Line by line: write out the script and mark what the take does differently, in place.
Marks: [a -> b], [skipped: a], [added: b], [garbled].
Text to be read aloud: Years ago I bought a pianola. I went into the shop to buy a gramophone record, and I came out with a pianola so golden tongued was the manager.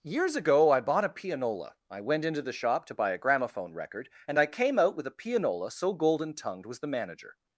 Years ago I bought a pianola. I went into the shop to buy a gramophone record, and I came out with a pianola so golden tongued was the manager.